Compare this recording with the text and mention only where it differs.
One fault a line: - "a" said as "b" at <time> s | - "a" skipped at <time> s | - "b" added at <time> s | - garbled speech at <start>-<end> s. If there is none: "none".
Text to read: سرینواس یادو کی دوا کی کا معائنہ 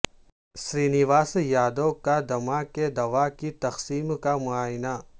- "کا دمہ" added at 2.0 s
- "تقسیم" added at 3.6 s